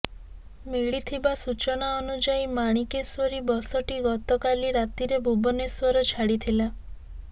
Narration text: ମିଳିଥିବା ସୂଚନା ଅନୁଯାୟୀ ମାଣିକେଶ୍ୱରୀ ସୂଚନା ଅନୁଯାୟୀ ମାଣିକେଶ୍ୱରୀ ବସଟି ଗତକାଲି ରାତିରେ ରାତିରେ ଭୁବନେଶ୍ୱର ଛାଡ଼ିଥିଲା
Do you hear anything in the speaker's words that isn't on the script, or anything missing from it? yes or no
yes